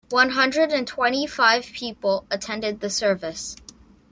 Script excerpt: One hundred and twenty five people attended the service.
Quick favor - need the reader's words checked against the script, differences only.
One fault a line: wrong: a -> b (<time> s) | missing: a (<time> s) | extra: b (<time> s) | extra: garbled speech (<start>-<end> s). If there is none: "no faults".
no faults